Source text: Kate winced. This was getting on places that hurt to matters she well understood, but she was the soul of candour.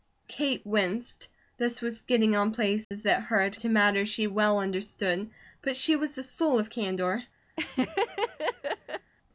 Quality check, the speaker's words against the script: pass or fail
pass